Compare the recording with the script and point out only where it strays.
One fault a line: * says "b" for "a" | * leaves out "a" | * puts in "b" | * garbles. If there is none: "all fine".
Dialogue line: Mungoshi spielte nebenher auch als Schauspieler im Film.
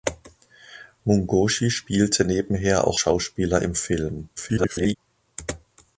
* leaves out "als"
* garbles